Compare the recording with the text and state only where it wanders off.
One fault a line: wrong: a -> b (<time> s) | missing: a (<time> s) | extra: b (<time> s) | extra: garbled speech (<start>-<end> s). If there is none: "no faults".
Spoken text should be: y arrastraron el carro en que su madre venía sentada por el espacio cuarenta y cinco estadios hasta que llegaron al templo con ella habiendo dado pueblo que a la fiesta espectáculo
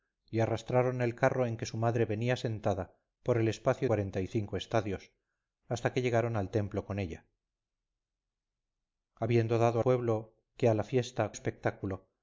no faults